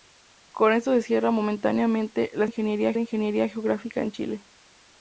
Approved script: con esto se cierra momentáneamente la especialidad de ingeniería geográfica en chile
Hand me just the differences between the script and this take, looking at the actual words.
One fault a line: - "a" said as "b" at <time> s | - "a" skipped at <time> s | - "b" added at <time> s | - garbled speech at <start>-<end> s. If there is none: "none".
- "especialidad" said as "ingeniería" at 2.4 s